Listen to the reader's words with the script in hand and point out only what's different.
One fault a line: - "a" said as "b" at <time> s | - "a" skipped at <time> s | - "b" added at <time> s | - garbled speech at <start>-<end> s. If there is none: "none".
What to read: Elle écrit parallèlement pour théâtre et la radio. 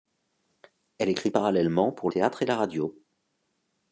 none